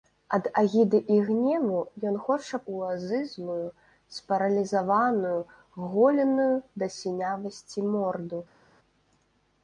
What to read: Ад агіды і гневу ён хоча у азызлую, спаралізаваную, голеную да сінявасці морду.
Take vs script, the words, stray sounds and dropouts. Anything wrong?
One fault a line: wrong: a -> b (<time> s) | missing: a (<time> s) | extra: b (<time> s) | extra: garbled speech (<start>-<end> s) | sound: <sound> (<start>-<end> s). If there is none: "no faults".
no faults